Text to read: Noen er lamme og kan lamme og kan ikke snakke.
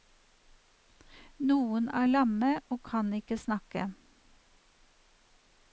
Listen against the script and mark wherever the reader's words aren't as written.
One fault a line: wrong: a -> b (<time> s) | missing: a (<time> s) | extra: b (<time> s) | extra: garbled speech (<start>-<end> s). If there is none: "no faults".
missing: lamme og kan (3.1 s)